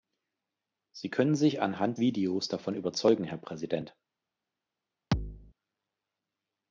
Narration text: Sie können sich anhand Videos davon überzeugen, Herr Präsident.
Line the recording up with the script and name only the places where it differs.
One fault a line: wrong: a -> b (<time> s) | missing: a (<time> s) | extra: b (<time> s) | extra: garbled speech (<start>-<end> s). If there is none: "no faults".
no faults